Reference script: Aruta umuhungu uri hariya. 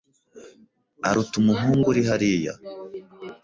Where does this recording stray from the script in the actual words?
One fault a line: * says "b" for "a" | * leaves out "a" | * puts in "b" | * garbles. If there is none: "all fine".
all fine